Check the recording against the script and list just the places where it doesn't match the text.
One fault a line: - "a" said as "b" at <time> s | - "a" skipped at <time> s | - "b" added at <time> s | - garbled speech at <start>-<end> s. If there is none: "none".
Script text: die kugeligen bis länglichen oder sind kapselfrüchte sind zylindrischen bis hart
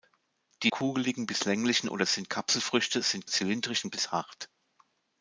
none